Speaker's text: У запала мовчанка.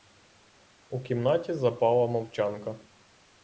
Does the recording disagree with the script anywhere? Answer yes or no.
yes